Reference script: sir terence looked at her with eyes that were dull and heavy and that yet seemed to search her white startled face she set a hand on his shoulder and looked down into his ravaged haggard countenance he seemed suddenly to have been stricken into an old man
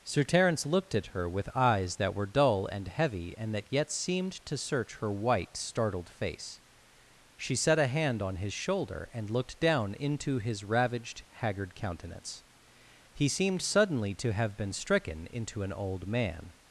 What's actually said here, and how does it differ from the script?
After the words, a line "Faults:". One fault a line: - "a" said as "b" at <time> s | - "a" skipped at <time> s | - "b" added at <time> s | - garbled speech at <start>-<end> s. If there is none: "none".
sir terence looked at her with eyes that were dull and heavy and that yet seemed to search her white startled face she set a hand on his shoulder and looked down into his ravaged haggard countenance he seemed suddenly to have been stricken into an old man
Faults:
none